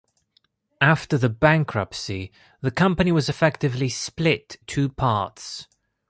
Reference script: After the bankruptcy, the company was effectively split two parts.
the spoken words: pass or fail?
pass